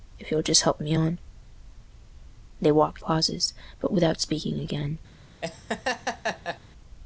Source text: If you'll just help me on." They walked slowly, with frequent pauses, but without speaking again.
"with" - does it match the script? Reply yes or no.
no